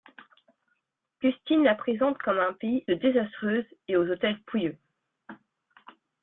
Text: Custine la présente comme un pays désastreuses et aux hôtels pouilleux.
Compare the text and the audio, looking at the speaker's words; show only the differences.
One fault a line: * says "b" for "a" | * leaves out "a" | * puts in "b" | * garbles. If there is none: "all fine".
all fine